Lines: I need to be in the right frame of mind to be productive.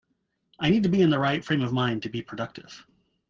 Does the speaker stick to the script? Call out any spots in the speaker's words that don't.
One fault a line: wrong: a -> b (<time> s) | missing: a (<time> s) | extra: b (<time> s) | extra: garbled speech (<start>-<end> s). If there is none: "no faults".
no faults